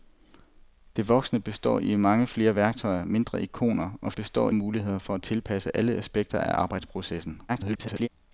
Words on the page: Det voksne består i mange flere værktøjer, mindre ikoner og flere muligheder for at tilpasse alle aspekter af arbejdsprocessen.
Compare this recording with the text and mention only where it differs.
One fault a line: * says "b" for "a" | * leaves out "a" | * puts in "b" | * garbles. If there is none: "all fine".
* says "består" for "flere"
* garbles